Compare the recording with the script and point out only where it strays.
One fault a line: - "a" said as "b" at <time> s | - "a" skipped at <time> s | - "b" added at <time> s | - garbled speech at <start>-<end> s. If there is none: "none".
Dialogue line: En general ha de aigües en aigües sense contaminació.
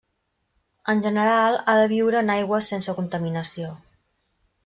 - "aigües" said as "viure" at 1.9 s